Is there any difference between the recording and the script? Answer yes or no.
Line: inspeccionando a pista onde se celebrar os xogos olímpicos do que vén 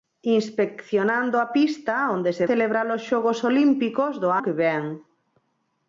no